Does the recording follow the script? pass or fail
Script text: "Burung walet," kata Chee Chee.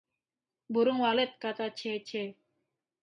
pass